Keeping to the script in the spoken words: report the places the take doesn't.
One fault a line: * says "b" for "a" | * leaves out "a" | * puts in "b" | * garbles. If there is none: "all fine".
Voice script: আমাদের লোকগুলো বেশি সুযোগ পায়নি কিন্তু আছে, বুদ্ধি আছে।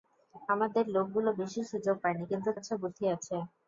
all fine